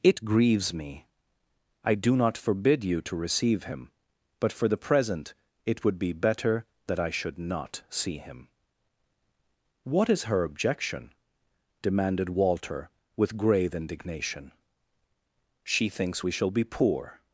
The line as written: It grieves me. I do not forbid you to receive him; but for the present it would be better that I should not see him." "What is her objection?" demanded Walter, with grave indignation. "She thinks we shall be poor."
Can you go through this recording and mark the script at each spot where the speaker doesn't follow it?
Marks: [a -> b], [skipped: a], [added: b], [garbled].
It grieves me. I do not forbid you to receive him; but for the present it would be better that I should not see him." "What is her objection?" demanded Walter, with grave indignation. "She thinks we shall be poor."